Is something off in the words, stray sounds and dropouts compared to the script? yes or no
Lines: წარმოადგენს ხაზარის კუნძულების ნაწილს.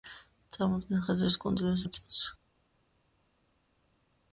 no